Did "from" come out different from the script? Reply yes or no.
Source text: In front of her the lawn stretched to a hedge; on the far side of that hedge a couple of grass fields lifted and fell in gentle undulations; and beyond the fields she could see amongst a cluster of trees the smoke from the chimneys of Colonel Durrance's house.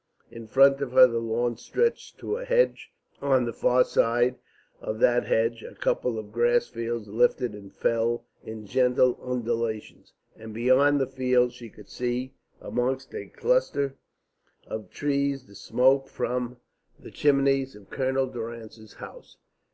no